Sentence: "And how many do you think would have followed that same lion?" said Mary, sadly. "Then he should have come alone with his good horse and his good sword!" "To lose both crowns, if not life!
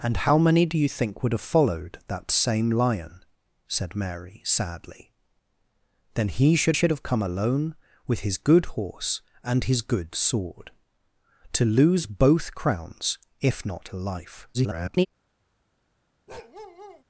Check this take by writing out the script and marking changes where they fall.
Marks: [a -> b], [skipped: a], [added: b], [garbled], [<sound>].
"And how many do you think would have followed that same lion?" said Mary, sadly. "Then he should [added: should] have come alone with his good horse and his good sword!" "To lose both crowns, if not life! [garbled] [bark]